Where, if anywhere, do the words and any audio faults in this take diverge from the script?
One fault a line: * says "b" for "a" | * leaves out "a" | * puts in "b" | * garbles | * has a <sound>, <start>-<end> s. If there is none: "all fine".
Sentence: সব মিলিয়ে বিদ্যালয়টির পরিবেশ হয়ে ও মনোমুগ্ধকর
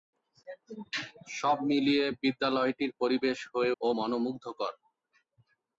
all fine